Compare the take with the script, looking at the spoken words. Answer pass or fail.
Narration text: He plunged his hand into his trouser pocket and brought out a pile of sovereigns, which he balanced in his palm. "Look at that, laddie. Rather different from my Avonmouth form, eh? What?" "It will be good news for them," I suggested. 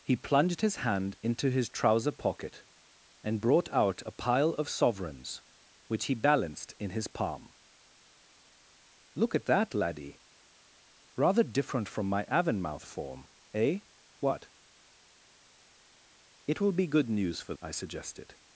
fail